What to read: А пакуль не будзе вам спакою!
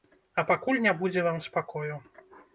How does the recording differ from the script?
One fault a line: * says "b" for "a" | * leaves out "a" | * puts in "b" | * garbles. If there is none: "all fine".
all fine